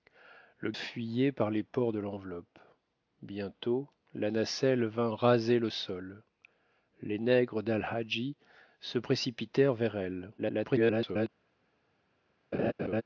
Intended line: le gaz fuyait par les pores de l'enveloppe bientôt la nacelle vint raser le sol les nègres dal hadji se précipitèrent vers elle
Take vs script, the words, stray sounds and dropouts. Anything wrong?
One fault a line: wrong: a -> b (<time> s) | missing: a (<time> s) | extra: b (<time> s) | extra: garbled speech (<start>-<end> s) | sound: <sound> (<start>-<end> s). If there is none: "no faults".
missing: gaz (0.7 s)
extra: garbled speech (10.4-11.3 s)
sound: laugh (12.5-13.0 s)